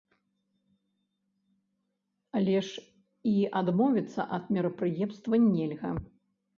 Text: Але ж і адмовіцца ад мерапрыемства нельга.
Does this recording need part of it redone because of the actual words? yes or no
no